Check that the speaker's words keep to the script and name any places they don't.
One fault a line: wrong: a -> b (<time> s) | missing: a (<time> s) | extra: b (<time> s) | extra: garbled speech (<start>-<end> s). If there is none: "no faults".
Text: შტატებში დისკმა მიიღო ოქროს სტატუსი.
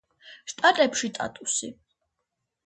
missing: დისკმა მიიღო ოქროს (1.1 s)